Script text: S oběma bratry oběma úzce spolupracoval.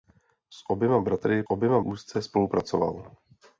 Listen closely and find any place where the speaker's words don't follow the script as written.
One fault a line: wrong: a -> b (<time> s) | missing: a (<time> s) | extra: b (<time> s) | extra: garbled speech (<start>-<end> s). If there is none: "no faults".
no faults